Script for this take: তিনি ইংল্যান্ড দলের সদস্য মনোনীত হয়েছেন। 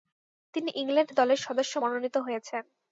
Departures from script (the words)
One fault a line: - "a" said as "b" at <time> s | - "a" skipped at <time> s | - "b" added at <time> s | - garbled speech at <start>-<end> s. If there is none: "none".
none